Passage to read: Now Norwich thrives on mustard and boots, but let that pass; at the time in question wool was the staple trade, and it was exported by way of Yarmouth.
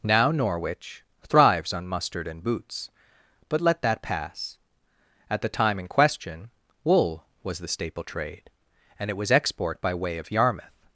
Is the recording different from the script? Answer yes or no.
yes